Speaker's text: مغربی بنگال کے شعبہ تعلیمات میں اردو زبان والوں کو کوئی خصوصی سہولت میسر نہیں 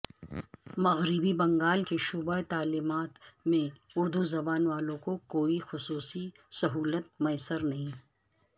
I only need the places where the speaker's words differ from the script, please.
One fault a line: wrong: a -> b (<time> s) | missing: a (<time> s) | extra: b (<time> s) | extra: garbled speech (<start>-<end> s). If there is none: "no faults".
no faults